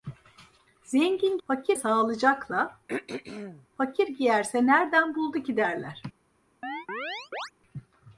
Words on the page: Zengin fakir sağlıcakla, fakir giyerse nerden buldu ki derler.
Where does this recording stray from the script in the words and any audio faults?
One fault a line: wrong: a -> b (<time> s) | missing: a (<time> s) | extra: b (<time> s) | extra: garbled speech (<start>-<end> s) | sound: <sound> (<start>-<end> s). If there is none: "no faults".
sound: throat clearing (2.9-3.7 s)
sound: chirp (6.6-7.5 s)